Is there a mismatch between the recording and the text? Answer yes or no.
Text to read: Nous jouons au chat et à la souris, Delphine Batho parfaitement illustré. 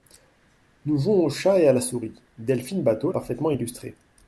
no